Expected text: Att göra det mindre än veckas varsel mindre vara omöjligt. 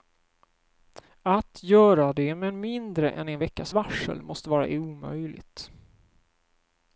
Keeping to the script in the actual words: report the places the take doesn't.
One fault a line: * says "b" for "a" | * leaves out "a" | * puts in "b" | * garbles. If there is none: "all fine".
* puts in "med"
* puts in "en"
* says "måste" for "mindre"